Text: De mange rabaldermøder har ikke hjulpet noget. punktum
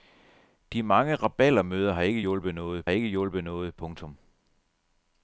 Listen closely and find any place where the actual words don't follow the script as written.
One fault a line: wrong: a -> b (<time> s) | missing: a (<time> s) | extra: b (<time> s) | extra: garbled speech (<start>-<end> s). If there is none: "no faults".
extra: ikke hjulpet noget (2.9 s)